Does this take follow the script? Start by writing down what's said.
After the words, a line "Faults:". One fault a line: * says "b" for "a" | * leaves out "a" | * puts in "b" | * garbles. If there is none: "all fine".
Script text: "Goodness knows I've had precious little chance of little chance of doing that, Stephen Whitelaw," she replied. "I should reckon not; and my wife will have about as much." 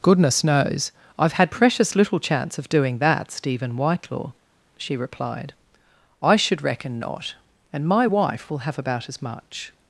"Goodness knows I've had precious little chance of doing that, Stephen Whitelaw," she replied. "I should reckon not; and my wife will have about as much."
Faults:
* leaves out "little chance of"